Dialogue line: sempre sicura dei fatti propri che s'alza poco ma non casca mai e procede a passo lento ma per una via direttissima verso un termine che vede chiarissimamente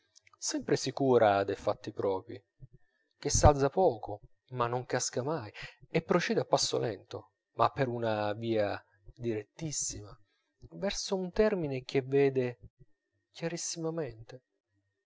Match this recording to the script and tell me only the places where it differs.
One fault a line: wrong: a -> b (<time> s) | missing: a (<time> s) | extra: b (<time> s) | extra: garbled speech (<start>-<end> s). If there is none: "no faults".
no faults